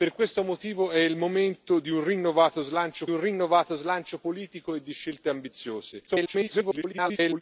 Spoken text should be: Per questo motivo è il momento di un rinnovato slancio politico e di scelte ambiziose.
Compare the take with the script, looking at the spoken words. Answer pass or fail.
fail